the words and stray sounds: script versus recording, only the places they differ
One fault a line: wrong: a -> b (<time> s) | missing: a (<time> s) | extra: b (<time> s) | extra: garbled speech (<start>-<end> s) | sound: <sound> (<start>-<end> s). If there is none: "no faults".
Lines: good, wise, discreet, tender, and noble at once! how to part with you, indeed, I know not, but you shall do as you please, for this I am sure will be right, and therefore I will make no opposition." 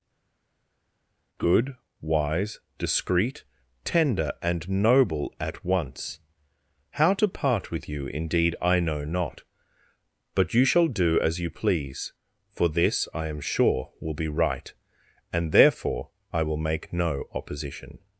no faults